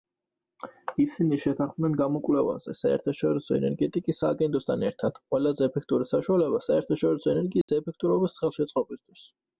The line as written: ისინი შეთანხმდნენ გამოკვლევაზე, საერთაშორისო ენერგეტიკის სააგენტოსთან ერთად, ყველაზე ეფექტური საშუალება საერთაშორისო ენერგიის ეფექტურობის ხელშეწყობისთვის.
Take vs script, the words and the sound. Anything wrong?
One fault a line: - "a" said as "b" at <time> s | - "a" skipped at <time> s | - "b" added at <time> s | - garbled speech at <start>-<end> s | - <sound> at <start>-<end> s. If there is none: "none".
- dropout at 7.6-7.7 s